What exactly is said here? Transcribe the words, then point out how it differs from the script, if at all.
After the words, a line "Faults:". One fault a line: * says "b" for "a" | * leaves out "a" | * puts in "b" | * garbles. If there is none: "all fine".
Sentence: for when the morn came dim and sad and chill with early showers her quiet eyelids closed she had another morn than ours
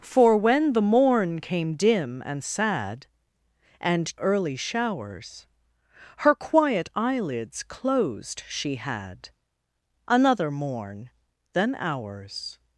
for when the morn came dim and sad and early showers her quiet eyelids closed she had another morn than ours
Faults:
* leaves out "chill with"